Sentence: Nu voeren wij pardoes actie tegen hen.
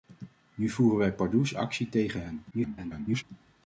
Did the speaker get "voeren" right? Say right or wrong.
right